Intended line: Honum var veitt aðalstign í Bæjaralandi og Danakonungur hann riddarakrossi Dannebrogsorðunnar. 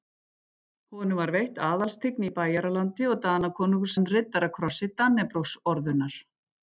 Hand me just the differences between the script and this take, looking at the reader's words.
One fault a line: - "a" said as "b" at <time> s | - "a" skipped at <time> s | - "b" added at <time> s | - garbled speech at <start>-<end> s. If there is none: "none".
none